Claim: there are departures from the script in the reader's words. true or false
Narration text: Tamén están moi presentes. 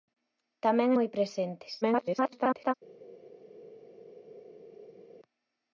true